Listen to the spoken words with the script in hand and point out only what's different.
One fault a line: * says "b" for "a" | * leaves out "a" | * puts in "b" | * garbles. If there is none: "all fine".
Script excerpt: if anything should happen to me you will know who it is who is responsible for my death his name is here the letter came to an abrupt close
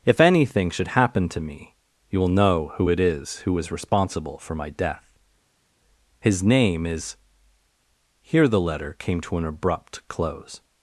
all fine